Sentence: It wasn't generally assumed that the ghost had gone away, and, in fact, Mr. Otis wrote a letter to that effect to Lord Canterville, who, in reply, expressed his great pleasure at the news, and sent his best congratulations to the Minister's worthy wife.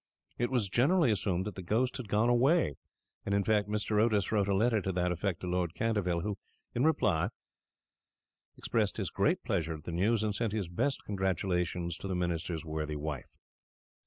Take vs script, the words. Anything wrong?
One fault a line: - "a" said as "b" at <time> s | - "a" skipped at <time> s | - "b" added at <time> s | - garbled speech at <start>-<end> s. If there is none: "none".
- "wasn't" said as "was" at 0.5 s